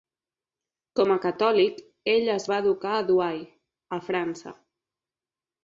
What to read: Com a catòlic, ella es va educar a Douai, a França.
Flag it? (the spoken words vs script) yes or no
yes